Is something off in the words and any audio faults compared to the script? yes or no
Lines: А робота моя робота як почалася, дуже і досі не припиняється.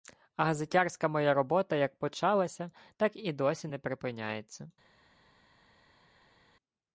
yes